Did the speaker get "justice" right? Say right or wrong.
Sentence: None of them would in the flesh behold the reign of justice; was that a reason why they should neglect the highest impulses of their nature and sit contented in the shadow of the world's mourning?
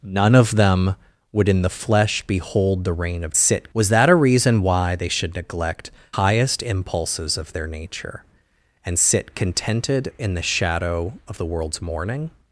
wrong